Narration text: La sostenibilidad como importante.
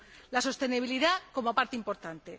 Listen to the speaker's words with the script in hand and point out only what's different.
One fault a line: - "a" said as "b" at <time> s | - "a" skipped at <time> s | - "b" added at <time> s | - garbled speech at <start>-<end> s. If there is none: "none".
- "parte" added at 1.5 s